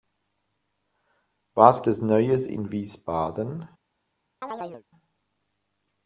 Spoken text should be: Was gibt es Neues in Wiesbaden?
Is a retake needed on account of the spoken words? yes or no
yes